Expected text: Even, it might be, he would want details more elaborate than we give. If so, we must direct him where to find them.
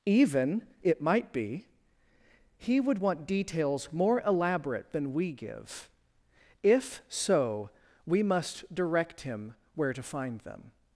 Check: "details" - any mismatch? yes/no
no